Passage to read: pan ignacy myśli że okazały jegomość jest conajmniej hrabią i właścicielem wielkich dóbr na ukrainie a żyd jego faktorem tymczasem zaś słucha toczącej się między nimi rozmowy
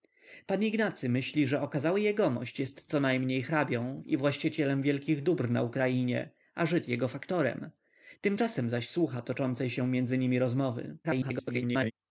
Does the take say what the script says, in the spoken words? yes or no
no